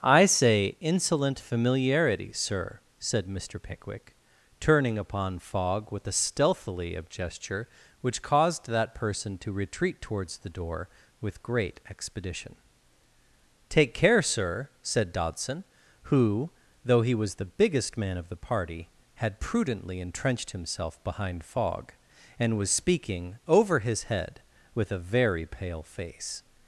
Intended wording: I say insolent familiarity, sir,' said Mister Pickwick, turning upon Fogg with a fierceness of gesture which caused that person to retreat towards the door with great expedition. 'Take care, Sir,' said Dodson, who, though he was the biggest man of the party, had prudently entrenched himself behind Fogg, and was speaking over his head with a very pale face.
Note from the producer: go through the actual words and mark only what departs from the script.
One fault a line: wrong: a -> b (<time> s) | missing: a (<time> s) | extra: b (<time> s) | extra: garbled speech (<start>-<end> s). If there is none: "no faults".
wrong: fierceness -> stealthily (6.1 s)